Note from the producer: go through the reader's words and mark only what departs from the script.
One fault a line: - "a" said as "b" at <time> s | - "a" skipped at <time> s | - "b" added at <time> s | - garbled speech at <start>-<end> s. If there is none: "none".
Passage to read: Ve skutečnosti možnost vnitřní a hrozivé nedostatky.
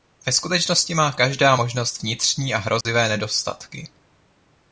- "má každá" added at 0.9 s